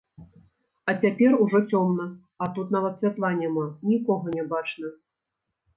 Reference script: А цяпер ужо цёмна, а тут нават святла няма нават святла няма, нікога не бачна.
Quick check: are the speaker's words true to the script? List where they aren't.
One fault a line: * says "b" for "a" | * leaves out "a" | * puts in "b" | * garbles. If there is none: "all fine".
* leaves out "нават святла няма"